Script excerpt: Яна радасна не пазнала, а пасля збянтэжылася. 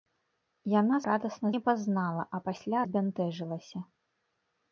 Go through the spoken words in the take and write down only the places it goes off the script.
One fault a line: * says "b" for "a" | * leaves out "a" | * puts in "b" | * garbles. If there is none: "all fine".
all fine